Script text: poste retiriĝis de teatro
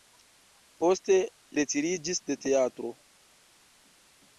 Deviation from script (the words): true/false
false